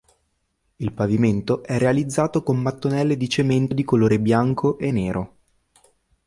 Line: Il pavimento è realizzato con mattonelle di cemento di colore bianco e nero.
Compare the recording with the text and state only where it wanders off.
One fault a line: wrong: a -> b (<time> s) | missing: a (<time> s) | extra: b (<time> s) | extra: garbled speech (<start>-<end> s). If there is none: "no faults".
no faults